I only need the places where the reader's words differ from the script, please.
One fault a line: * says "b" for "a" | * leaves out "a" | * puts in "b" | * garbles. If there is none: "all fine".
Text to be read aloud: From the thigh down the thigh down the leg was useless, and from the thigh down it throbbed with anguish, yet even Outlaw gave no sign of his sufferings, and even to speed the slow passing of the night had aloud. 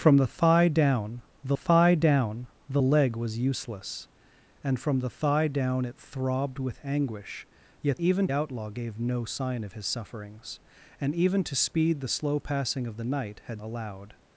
all fine